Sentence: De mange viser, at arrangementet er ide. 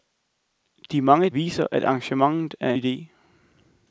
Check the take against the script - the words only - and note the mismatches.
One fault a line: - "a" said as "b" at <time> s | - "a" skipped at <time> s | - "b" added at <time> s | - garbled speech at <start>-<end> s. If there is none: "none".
none